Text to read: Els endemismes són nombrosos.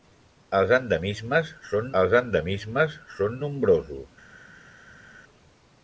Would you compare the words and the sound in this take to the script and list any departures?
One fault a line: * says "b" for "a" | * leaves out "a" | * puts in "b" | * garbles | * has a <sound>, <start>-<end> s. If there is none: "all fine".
* puts in "els endemismes són"